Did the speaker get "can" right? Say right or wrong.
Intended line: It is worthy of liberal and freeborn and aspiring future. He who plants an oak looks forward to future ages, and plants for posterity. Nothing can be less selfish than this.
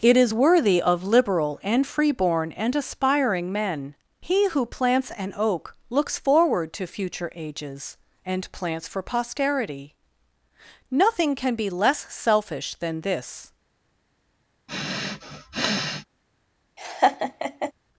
right